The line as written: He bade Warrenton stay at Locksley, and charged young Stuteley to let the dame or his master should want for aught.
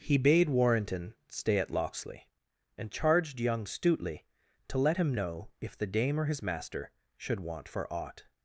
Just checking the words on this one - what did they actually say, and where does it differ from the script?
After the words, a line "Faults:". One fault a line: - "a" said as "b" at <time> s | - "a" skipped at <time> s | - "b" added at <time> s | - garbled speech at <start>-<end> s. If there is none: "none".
He bade Warrenton stay at Locksley, and charged young Stuteley to let him know if the dame or his master should want for aught.
Faults:
- "him know if" added at 5.0 s